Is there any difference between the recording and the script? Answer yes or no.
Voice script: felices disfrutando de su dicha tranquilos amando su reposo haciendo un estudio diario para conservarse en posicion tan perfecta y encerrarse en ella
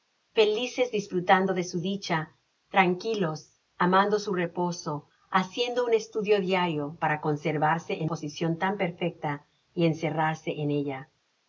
no